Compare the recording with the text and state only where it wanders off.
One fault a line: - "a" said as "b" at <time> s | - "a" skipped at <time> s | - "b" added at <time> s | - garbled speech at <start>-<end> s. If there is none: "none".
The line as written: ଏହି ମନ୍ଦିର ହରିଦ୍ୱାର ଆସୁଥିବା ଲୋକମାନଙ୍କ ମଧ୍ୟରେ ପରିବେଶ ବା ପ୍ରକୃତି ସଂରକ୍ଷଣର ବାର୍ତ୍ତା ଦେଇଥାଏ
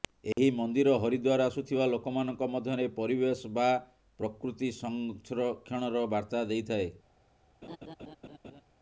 none